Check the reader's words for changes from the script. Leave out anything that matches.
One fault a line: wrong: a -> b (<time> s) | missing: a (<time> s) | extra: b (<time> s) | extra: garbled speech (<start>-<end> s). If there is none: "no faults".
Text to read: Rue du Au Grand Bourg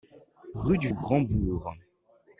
no faults